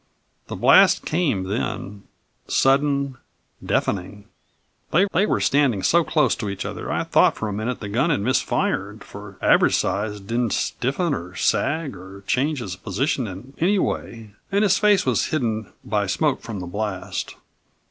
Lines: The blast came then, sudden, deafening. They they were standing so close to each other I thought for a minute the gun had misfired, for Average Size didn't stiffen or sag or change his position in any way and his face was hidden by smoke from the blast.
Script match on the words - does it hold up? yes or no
yes